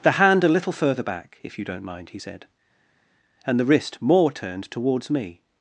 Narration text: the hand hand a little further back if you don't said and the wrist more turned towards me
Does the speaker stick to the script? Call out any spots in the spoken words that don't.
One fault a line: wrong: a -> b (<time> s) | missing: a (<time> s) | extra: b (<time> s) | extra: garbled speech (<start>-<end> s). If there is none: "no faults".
missing: hand (0.4 s)
extra: mind he (1.8 s)